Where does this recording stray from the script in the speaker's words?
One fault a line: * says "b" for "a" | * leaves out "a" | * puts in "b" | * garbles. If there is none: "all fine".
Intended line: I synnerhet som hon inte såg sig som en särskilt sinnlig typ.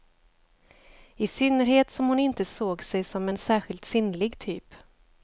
all fine